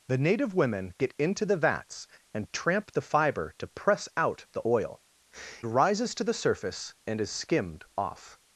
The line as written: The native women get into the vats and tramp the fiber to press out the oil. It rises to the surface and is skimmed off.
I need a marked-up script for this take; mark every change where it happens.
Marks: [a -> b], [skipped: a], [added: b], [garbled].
The native women get into the vats and tramp the fiber to press out the oil. [skipped: It] rises to the surface and is skimmed off.